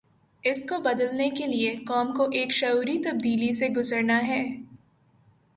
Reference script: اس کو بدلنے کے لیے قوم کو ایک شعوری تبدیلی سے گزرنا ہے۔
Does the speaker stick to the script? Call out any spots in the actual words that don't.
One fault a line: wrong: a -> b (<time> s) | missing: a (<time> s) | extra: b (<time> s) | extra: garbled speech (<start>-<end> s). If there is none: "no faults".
no faults